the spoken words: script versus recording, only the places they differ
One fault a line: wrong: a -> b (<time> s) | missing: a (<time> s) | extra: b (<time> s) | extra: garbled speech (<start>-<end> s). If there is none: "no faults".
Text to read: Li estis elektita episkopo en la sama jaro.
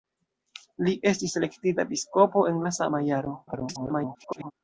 extra: garbled speech (3.5-4.5 s)